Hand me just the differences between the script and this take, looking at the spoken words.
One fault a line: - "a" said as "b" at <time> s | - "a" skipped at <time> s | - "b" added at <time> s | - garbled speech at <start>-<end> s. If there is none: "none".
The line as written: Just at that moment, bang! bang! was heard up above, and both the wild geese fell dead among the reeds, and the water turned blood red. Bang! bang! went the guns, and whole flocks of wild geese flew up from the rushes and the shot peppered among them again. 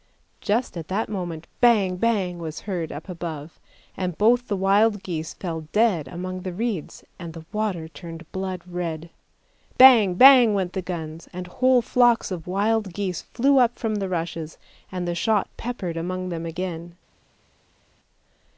none